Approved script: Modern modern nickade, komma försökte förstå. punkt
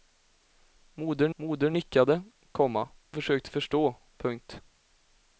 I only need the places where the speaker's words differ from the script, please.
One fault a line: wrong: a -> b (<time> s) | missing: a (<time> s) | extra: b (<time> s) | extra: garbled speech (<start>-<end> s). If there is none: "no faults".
no faults